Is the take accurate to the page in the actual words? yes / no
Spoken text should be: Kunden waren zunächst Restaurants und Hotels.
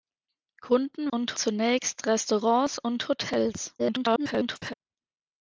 no